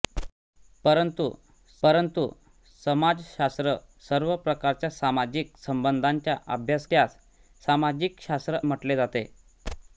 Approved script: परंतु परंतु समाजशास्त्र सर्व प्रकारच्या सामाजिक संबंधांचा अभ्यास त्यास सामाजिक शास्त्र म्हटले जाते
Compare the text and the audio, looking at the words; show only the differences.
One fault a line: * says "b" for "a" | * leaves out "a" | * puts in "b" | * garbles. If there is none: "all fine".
all fine